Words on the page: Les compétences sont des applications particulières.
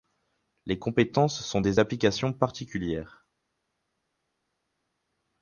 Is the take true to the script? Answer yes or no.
yes